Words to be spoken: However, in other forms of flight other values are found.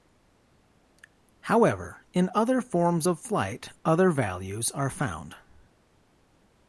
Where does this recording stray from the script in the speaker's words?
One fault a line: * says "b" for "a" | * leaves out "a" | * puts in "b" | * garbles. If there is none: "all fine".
all fine